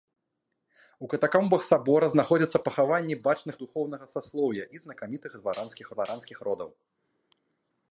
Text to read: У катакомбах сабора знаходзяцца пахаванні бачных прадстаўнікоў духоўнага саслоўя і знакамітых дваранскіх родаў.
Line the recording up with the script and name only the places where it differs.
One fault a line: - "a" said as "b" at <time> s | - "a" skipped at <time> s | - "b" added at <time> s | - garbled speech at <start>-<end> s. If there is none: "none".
- "прадстаўнікоў" skipped at 3.5 s
- "дваранскіх" added at 6.0 s